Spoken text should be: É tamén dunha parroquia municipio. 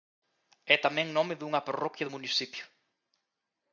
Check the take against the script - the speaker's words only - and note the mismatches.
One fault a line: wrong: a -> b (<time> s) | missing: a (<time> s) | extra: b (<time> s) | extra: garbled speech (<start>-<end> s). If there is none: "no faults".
extra: nome (1.2 s)
extra: do (2.0 s)